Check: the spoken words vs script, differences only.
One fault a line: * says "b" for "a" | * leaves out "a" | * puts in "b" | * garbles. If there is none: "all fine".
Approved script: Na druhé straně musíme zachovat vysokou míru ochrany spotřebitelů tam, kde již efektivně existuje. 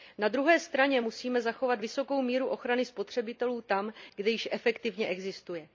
all fine